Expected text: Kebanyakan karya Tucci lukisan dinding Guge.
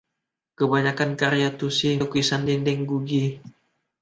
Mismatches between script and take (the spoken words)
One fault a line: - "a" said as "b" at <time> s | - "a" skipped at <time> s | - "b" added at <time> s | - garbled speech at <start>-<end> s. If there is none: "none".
none